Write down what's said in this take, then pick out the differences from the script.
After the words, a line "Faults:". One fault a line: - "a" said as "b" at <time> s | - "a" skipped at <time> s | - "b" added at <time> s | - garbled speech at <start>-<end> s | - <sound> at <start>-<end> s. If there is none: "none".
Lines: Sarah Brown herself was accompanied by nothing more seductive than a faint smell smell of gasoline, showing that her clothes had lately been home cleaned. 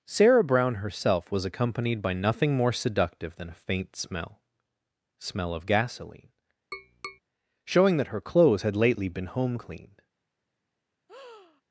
Sarah Brown herself was accompanied by nothing more seductive than a faint smell smell of gasoline, showing that her clothes had lately been home cleaned.
Faults:
- tap at 6.7-7.2 s
- breath at 11.1-11.6 s